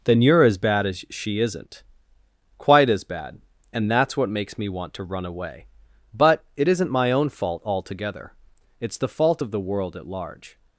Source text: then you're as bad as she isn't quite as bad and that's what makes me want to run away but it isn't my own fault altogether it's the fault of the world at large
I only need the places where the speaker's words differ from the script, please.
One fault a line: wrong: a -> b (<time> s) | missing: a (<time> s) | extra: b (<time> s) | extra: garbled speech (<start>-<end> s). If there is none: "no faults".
no faults